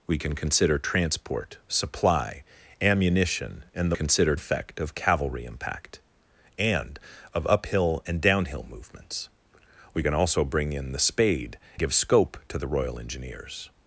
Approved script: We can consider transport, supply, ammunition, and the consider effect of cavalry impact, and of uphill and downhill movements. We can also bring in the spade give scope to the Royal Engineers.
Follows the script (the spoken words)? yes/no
yes